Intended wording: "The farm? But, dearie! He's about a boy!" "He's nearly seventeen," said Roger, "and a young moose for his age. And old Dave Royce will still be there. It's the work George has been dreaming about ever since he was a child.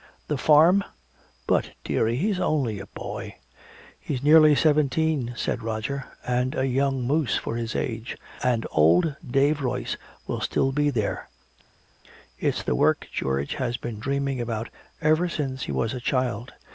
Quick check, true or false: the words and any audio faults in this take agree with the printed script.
false